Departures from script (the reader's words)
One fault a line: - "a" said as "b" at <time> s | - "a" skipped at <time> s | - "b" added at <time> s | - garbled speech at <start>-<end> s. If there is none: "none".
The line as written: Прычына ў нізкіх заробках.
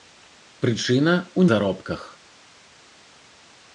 - "нізкіх" skipped at 1.4 s